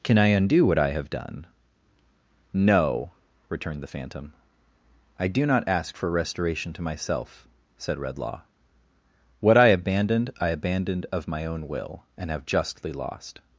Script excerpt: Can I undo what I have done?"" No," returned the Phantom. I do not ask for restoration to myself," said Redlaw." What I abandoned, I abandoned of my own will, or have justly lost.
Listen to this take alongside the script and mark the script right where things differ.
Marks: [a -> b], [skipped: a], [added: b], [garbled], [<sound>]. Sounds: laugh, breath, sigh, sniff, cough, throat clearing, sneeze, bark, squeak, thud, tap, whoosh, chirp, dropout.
Can I undo what I have done?"" No," returned the Phantom. I do not ask for restoration to myself," said Redlaw." What I abandoned, I abandoned of my own will, [or -> and] have justly lost.